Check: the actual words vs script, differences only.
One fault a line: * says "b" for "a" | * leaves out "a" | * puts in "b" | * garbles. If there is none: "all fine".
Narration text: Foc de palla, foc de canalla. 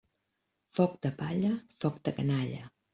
all fine